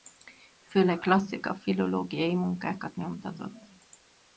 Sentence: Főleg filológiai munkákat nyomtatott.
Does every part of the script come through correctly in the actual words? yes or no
no